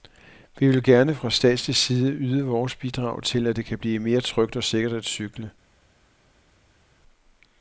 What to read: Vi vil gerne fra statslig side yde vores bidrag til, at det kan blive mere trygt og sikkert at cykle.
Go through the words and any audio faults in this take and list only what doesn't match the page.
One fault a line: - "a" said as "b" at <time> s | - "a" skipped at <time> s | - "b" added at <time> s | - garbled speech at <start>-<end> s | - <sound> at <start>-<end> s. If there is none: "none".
none